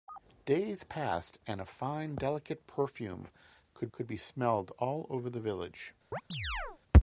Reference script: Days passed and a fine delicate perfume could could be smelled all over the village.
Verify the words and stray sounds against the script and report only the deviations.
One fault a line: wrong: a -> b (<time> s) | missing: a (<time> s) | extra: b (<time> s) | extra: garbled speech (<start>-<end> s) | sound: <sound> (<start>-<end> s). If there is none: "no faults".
sound: chirp (6.1-6.8 s)